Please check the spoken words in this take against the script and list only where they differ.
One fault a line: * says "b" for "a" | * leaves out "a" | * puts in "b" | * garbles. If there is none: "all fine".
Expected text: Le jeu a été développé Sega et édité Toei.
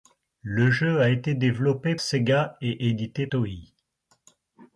all fine